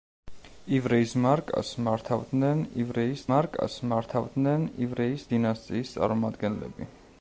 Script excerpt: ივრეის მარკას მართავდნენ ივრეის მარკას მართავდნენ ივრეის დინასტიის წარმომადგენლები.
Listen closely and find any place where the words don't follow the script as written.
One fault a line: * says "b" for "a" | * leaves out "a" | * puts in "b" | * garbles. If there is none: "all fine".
all fine